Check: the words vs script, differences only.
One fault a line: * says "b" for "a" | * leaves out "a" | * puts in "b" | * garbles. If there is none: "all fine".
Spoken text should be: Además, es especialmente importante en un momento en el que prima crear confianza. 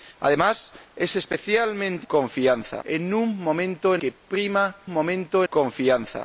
* says "confianza" for "importante"
* leaves out "el"
* says "momento" for "crear"